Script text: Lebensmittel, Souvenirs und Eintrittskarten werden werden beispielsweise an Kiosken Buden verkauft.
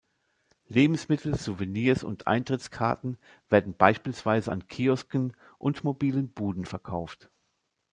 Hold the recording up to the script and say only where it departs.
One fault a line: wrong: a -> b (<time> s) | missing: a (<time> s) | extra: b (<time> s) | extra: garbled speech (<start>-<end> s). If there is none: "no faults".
missing: werden (3.8 s)
extra: und mobilen (5.6 s)